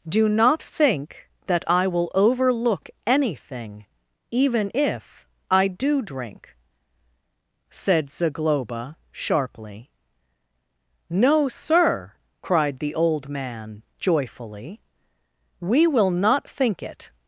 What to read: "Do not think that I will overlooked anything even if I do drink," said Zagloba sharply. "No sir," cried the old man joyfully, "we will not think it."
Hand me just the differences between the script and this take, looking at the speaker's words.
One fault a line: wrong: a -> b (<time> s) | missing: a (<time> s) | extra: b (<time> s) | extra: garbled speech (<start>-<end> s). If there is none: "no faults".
wrong: overlooked -> overlook (2.1 s)